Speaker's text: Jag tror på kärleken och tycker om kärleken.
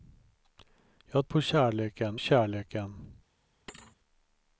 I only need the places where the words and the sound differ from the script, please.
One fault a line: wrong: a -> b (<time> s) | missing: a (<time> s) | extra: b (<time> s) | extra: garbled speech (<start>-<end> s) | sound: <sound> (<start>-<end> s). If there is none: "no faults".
missing: tror (1.3 s)
missing: och tycker om (2.2 s)
sound: thud (3.7-4.0 s)